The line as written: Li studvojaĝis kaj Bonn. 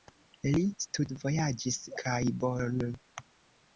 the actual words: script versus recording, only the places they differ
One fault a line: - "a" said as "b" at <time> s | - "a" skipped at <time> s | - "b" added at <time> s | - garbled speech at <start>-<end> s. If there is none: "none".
none